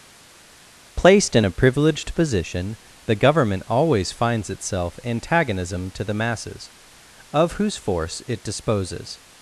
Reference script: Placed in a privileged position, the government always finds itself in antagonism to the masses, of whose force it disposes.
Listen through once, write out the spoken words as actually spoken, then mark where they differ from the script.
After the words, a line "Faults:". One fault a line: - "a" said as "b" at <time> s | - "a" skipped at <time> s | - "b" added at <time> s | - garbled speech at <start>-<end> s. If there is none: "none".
Placed in a privileged position, the government always finds itself antagonism to the masses, of whose force it disposes.
Faults:
- "in" skipped at 5.0 s